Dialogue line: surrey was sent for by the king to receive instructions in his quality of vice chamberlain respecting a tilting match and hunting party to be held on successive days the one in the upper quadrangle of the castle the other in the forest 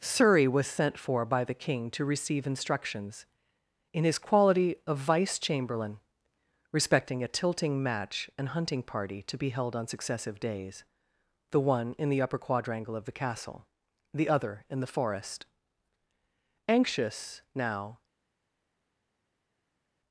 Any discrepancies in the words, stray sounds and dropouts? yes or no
yes